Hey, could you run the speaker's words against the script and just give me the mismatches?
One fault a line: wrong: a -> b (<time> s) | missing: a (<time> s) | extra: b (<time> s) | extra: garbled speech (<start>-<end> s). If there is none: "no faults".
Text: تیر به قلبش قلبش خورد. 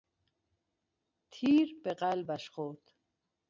missing: قلبش (2.5 s)